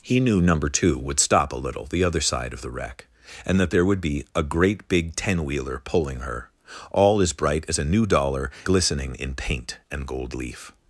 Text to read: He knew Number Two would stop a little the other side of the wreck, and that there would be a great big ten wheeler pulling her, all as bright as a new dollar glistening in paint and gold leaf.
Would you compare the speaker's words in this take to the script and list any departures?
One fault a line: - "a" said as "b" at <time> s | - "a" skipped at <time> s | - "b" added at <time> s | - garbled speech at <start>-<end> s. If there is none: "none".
none